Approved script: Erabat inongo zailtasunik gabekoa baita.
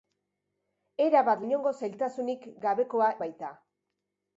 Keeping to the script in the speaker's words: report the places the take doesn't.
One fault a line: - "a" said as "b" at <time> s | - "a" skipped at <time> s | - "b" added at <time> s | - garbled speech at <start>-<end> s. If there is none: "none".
none